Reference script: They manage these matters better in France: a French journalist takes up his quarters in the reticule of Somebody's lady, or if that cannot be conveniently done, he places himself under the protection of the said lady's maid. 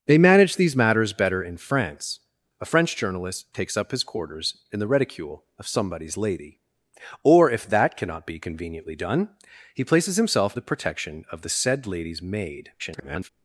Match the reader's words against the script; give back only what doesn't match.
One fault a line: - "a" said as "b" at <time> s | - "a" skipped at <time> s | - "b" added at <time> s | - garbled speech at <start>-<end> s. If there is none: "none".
- "under" skipped at 10.6 s
- garbled speech at 12.8-13.3 s